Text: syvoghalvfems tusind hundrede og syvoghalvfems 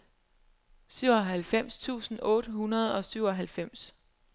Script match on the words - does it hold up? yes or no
no